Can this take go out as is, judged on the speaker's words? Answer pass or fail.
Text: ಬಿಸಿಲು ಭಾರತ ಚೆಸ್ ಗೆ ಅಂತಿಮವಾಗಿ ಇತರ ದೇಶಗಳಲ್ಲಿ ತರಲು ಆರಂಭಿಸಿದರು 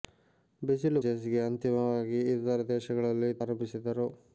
fail